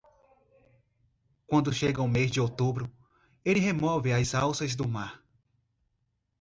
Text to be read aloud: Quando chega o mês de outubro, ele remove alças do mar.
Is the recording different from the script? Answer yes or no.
yes